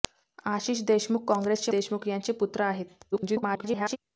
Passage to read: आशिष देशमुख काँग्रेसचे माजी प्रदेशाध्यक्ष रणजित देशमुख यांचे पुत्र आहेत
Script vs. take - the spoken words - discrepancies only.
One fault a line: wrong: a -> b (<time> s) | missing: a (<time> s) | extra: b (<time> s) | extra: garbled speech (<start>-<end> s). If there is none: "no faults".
missing: माजी प्रदेशाध्यक्ष रणजित (1.7 s)
extra: garbled speech (3.1-4.0 s)